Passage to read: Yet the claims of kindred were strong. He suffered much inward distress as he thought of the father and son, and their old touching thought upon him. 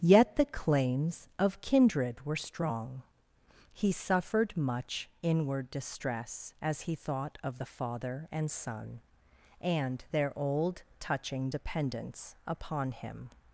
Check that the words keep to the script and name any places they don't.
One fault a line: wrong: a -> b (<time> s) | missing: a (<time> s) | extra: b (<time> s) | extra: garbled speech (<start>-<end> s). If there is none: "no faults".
wrong: thought -> dependence (11.5 s)